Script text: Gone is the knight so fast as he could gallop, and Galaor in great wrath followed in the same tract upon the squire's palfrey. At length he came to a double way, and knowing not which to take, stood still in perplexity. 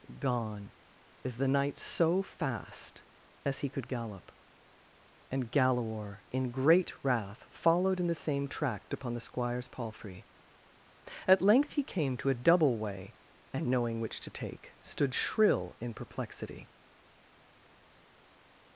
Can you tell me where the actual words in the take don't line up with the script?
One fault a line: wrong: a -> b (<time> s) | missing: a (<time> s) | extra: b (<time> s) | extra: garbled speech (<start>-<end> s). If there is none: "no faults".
missing: not (14.0 s)
wrong: still -> shrill (15.1 s)